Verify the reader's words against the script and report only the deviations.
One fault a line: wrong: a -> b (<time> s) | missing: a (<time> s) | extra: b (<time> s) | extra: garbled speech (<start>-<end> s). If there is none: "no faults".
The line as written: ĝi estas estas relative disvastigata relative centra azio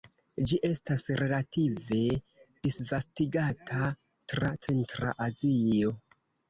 missing: estas (1.0 s)
wrong: relative -> tra (4.3 s)